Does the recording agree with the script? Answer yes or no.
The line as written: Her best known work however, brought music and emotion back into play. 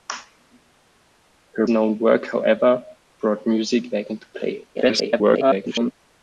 no